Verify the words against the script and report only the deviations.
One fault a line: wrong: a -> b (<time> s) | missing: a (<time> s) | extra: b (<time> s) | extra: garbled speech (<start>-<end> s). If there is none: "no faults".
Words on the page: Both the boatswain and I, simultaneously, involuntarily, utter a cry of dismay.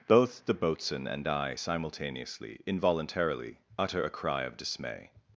no faults